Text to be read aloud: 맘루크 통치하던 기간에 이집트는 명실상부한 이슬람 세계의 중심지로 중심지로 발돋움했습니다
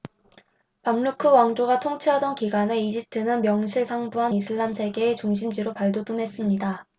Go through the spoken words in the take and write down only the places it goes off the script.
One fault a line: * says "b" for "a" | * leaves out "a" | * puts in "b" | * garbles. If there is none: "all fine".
* puts in "왕조가"
* leaves out "중심지로"